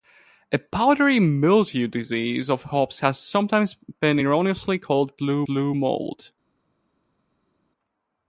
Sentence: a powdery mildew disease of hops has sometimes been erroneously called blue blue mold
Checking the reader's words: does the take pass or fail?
pass